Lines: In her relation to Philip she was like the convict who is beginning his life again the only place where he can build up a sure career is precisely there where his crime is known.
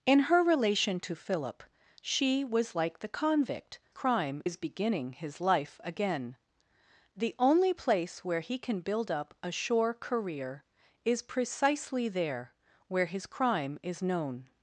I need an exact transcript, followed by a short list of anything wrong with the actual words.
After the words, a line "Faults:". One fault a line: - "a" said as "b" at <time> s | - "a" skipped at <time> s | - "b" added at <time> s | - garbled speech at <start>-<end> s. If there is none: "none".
In her relation to Philip she was like the convict crime is beginning his life again the only place where he can build up a sure career is precisely there where his crime is known.
Faults:
- "who" said as "crime" at 3.9 s